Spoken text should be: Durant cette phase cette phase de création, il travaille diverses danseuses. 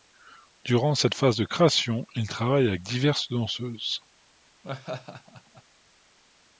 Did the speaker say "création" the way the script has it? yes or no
yes